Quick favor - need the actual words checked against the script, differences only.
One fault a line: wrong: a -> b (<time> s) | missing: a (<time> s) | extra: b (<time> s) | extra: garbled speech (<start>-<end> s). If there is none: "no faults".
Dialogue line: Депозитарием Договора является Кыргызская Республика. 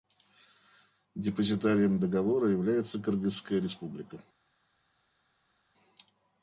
no faults